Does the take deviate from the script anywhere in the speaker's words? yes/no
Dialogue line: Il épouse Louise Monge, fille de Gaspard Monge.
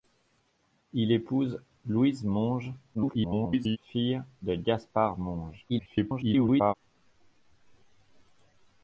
yes